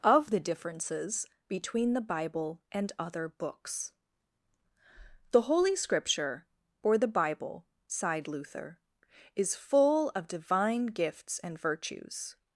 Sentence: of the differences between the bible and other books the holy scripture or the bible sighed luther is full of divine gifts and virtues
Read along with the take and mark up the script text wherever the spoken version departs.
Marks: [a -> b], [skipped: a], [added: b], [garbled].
of the differences between the bible and other books the holy scripture or the bible sighed luther is full of divine gifts and virtues